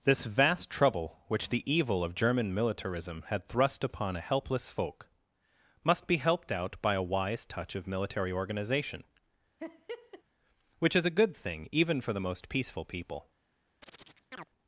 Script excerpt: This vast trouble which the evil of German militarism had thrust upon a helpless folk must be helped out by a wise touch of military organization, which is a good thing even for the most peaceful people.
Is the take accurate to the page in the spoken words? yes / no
yes